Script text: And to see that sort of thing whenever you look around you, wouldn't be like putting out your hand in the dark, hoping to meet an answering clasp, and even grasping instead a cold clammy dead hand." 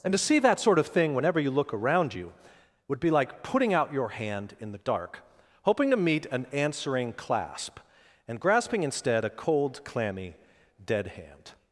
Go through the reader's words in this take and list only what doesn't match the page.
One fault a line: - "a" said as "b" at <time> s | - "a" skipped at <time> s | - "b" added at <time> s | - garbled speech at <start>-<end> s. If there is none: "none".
- "wouldn't" said as "would" at 2.9 s
- "even" skipped at 8.4 s